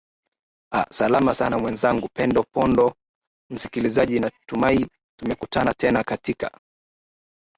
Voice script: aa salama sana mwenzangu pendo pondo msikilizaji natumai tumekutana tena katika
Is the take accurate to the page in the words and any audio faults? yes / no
yes